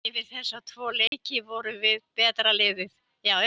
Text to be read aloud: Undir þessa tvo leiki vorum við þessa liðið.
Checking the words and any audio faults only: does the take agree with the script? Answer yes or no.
no